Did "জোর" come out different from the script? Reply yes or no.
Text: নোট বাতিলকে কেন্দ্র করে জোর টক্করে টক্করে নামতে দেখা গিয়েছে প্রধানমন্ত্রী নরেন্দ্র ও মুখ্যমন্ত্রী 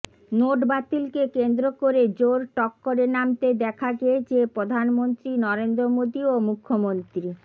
no